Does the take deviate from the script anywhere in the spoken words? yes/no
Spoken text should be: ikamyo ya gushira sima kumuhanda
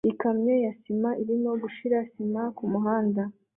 yes